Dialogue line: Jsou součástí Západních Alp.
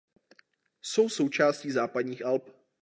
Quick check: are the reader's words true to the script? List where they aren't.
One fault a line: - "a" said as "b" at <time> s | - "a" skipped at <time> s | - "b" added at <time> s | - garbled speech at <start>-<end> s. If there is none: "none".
none